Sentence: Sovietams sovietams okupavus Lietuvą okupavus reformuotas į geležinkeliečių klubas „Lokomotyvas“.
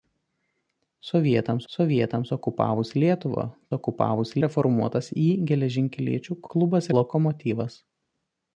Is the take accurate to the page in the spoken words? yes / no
yes